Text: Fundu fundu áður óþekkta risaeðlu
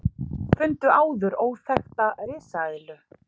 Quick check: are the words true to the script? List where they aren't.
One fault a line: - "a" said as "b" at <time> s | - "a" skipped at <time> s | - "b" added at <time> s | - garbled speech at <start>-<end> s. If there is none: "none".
- "fundu" skipped at 0.9 s